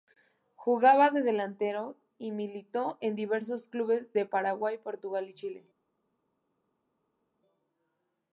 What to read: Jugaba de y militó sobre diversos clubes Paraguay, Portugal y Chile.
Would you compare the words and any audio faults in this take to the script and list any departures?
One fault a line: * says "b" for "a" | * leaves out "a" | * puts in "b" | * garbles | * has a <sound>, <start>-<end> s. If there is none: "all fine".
* puts in "delantero"
* says "en" for "sobre"
* puts in "de"